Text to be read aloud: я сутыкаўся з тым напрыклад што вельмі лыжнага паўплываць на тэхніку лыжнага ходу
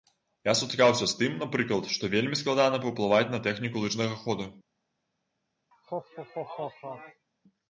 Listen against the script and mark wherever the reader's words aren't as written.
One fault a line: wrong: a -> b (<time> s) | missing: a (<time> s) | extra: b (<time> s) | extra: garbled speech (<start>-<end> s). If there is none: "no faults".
wrong: лыжнага -> складана (2.4 s)